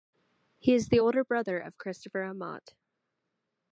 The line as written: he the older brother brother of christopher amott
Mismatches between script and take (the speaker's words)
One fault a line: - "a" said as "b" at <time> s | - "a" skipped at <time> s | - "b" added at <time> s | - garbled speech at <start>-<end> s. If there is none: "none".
- "is" added at 0.7 s
- "brother" skipped at 1.6 s